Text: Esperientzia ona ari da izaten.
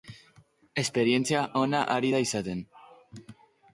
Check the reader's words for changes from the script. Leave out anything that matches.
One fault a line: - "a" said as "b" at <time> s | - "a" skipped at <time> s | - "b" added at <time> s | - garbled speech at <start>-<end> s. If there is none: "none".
none